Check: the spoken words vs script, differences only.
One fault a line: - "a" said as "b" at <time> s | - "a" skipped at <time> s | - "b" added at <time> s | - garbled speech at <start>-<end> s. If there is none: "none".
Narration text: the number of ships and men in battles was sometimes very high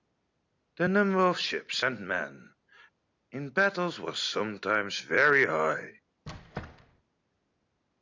none